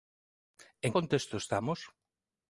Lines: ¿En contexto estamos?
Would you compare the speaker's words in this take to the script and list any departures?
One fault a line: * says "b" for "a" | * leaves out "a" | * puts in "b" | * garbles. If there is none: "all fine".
all fine